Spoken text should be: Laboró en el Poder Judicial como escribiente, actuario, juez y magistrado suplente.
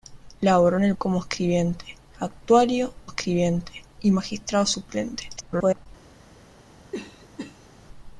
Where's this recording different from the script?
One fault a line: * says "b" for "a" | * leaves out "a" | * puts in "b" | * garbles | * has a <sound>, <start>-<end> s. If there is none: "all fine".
* leaves out "Poder Judicial"
* says "escribiente" for "juez"
* garbles
* has a cough, 6.9-7.7 s